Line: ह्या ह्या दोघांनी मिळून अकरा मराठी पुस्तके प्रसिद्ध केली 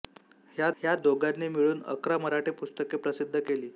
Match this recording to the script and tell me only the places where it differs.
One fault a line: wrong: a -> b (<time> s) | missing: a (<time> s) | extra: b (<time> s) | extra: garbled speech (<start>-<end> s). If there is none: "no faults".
no faults